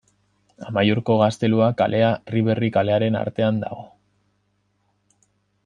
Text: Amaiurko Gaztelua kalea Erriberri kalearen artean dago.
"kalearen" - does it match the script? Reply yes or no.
yes